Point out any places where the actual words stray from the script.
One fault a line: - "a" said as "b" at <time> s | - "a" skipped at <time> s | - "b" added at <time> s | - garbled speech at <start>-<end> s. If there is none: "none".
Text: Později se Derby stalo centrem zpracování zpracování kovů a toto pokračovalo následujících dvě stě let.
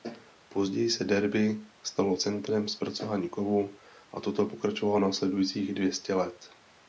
- "zpracování" skipped at 3.3 s